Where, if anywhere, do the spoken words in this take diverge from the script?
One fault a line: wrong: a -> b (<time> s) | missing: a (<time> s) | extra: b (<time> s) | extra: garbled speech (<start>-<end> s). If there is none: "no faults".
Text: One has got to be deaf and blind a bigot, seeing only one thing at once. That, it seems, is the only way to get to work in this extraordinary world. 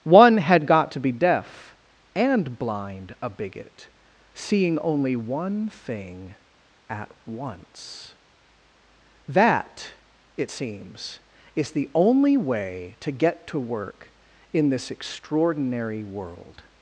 wrong: has -> had (0.4 s)